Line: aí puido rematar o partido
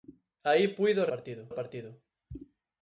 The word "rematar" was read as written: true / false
false